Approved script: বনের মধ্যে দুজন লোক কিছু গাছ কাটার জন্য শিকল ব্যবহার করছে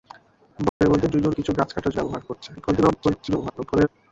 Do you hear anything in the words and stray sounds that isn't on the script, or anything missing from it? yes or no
yes